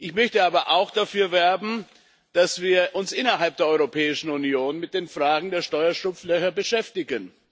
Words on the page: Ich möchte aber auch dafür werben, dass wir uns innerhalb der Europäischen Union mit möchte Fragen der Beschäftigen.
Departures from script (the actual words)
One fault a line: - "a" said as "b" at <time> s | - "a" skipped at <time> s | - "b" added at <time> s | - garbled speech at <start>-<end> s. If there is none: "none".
- "möchte" said as "den" at 5.0 s
- "Steuerschlupflöcher" added at 5.6 s